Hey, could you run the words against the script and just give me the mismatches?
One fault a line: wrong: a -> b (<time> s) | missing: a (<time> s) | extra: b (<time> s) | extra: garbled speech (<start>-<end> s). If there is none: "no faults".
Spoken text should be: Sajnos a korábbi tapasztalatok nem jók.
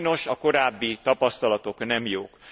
no faults